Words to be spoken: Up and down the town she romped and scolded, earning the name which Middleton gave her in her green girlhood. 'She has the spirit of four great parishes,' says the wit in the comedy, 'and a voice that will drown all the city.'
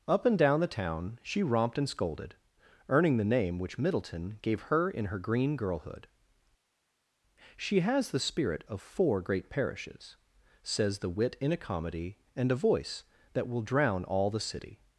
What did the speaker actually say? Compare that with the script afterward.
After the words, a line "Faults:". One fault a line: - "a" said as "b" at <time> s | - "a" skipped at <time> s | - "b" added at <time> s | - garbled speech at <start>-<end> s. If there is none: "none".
Up and down the town she romped and scolded, earning the name which Middleton gave her in her green girlhood. 'She has the spirit of four great parishes,' says the wit in a comedy, 'and a voice that will drown all the city.'
Faults:
- "the" said as "a" at 11.5 s